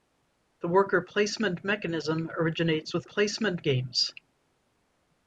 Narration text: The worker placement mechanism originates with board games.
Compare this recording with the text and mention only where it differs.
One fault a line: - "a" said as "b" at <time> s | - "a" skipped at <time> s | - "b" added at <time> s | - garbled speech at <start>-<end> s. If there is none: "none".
- "board" said as "placement" at 3.0 s